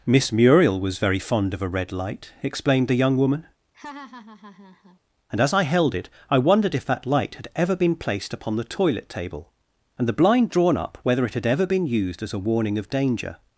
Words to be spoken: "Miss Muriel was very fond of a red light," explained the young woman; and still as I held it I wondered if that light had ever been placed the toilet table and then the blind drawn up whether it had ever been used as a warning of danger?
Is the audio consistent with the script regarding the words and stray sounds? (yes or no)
no